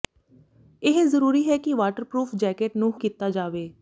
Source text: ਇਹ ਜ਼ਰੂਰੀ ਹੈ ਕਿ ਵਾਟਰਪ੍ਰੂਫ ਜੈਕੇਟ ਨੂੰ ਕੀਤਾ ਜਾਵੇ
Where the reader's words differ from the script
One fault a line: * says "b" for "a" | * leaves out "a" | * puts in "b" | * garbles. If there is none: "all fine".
all fine